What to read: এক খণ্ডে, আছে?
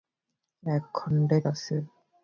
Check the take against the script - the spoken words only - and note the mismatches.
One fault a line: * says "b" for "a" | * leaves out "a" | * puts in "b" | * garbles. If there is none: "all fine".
all fine